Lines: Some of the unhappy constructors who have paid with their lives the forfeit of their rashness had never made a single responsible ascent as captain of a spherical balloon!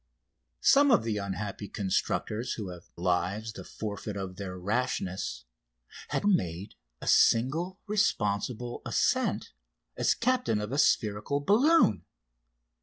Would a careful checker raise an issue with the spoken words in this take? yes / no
yes